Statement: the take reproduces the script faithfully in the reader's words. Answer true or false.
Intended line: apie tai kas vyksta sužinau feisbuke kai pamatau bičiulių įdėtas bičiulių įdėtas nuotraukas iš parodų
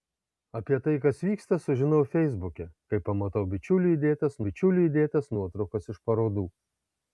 true